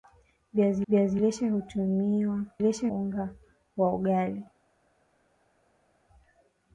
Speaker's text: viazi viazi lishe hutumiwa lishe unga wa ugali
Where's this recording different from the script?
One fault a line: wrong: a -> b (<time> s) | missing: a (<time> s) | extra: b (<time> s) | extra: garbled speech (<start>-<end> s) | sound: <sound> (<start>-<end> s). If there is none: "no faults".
no faults